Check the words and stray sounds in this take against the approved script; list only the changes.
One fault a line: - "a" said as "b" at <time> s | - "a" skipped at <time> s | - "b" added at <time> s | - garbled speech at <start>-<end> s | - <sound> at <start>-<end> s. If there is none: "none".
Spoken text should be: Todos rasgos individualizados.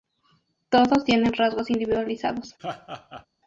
- "tienen" added at 1.1 s
- laugh at 2.6-3.3 s